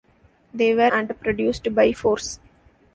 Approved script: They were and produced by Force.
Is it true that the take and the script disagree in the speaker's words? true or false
false